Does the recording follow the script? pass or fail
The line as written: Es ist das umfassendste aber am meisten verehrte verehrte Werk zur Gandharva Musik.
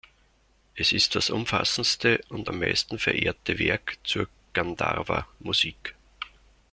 fail